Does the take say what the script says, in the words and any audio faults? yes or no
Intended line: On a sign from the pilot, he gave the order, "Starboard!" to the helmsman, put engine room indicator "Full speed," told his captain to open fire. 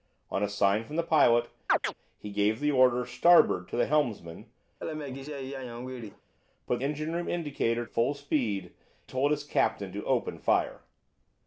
no